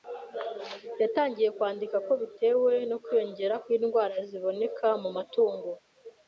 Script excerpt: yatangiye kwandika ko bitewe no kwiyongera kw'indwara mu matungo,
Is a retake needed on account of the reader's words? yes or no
yes